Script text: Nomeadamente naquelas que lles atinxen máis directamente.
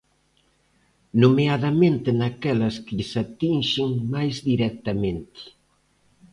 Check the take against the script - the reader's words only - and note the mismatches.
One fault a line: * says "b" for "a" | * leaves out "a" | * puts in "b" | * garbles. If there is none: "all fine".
all fine